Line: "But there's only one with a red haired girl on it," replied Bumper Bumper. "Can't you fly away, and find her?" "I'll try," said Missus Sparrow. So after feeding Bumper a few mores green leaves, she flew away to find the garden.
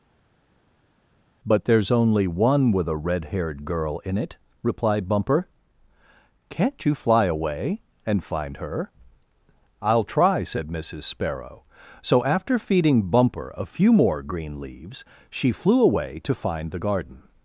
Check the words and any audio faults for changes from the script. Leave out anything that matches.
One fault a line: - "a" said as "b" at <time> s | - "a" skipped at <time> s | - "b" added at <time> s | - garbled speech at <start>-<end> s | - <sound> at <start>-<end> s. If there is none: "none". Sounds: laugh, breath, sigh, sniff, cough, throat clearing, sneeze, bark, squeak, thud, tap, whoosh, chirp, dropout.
- "on" said as "in" at 4.0 s
- "Bumper" skipped at 5.5 s
- "mores" said as "more" at 13.9 s